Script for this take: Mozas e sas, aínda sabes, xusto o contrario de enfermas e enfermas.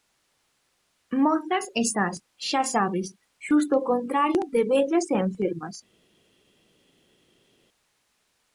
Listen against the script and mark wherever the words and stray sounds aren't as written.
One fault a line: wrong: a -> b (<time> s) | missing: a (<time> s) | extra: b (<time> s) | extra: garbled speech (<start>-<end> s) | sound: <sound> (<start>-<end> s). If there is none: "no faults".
wrong: aínda -> xa (2.5 s)
wrong: enfermas -> vellas (4.7 s)